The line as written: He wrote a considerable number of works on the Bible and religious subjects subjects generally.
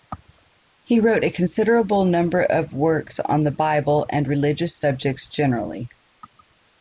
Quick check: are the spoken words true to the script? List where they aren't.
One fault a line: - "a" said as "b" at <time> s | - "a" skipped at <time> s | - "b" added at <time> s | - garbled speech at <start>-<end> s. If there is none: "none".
- "subjects" skipped at 5.3 s